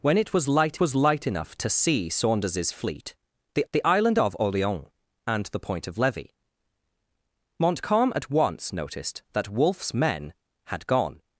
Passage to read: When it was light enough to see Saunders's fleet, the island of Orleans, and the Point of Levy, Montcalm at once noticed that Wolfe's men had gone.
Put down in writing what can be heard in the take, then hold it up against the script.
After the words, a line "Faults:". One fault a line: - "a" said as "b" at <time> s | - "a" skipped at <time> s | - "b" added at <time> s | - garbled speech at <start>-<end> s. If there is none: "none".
When it was light was light enough to see Saunders's fleet, the the island of Orleans, and the Point of Levy, Montcalm at once noticed that Wolfe's men had gone.
Faults:
- "was light" added at 0.8 s
- "the" added at 3.7 s